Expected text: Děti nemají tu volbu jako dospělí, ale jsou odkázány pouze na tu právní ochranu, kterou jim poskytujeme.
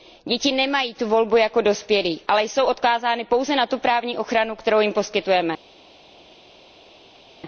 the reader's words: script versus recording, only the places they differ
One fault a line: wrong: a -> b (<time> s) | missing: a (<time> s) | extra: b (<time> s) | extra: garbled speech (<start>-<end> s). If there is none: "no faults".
no faults